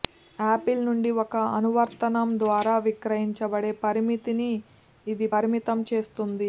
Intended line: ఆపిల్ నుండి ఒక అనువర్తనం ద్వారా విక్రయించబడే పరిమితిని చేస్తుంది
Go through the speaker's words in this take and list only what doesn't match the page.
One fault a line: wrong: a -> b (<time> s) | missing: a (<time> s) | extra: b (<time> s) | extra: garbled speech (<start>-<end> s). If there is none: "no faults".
extra: ఇది పరిమితం (5.1 s)